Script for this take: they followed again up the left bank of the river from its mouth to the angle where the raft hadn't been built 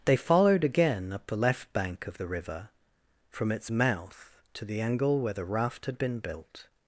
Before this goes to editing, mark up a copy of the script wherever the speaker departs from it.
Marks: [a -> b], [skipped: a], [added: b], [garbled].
they followed again up the left bank of the river from its mouth to the angle where the raft [hadn't -> had] been built